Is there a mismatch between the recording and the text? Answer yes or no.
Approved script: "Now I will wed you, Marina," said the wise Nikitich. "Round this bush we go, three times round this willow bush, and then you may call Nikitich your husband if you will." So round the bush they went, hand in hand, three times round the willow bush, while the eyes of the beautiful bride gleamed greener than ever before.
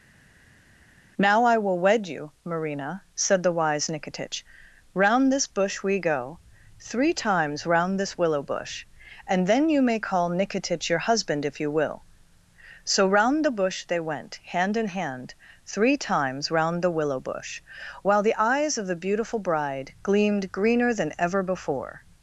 no